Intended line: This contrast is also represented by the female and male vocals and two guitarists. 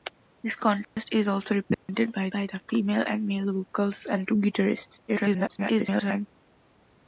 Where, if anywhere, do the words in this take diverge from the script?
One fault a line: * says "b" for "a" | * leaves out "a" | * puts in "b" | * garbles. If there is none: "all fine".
* puts in "by"
* garbles